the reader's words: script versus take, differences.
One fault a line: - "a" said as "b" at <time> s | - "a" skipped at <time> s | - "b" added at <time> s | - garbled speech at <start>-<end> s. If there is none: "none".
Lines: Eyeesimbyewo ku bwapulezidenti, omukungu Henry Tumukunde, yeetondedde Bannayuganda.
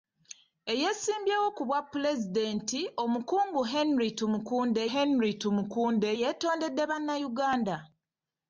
- "Henry Tumukunde" added at 4.9 s